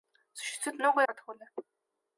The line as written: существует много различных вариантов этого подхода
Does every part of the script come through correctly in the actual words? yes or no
no